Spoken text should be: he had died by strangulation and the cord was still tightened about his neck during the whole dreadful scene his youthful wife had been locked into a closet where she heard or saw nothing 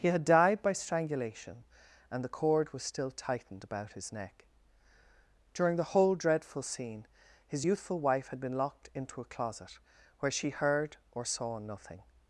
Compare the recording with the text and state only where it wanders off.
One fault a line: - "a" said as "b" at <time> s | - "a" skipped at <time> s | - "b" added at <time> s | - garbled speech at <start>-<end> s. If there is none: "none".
none